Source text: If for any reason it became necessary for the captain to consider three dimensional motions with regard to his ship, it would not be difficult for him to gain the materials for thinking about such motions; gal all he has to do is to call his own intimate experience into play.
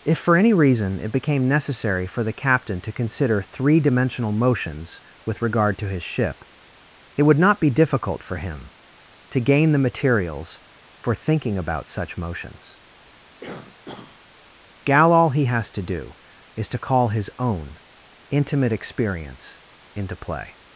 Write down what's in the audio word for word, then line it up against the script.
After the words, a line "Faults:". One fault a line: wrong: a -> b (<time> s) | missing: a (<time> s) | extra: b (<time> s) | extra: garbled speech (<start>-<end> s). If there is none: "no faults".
If for any reason it became necessary for the captain to consider three dimensional motions with regard to his ship, it would not be difficult for him to gain the materials for thinking about such motions; gal all he has to do is to call his own intimate experience into play.
Faults:
no faults